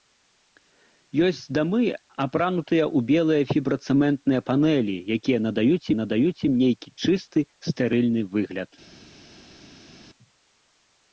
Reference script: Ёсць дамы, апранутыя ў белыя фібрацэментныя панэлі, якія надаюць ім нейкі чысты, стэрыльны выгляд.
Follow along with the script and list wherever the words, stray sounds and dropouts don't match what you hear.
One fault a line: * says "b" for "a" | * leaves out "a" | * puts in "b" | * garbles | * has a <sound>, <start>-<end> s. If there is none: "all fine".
* puts in "надаюць"